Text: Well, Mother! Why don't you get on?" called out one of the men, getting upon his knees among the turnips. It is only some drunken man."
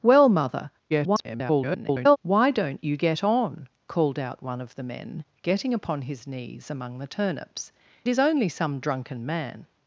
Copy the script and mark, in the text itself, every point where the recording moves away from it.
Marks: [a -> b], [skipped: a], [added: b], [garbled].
Well, Mother! [garbled] Why don't you get on?" called out one of the men, getting upon his knees among the turnips. [skipped: It] is only some drunken man."